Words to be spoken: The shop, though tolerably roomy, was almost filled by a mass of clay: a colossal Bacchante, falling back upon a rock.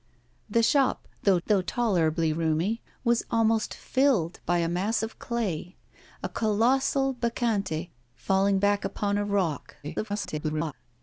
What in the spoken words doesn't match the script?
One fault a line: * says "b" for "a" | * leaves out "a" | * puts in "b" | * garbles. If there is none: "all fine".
* puts in "though"
* garbles